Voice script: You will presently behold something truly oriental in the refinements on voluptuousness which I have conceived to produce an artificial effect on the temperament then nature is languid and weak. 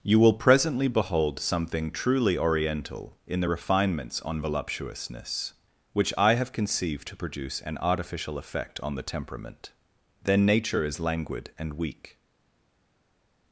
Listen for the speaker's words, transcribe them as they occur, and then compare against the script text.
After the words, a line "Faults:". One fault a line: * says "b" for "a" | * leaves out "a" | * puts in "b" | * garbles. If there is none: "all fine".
You will presently behold something truly oriental in the refinements on voluptuousness which I have conceived to produce an artificial effect on the temperament then nature is languid and weak.
Faults:
all fine